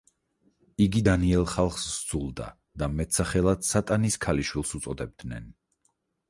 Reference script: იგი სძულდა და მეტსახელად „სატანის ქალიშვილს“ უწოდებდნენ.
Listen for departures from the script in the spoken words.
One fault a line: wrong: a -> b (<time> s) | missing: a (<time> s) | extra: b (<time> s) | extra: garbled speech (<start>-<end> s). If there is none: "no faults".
extra: დანიელ ხალხს (1.1 s)